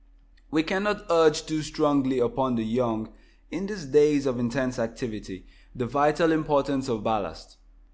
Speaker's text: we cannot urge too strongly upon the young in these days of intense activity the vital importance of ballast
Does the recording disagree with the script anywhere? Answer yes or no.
no